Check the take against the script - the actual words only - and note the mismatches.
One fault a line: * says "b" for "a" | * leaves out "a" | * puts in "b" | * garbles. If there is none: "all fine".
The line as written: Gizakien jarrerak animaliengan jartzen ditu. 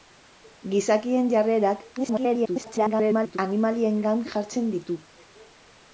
* garbles